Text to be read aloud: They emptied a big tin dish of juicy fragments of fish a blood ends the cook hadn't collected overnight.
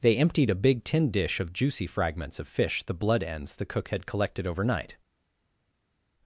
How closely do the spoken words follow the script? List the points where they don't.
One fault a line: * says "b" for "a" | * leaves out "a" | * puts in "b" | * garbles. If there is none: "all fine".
* says "the" for "a"
* says "had" for "hadn't"